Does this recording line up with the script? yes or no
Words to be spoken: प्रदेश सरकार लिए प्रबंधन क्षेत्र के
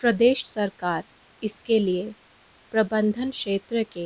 no